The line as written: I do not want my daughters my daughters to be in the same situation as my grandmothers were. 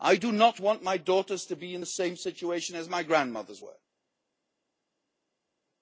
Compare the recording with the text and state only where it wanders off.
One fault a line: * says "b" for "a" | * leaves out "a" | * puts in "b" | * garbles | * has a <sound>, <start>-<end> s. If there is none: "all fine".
* leaves out "my daughters"